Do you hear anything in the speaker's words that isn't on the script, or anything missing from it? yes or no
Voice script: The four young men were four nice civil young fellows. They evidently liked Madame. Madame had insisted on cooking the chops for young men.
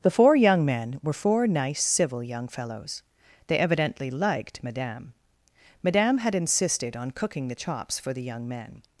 yes